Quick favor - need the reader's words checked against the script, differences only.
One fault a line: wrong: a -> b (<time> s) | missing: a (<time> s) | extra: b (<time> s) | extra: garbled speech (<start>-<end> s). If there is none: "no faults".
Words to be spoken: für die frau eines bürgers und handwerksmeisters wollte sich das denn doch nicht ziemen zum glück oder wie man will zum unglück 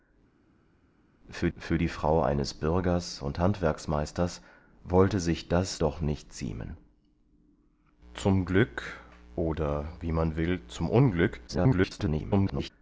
extra: für (1.6 s)
missing: denn (5.8 s)
extra: garbled speech (11.5-12.7 s)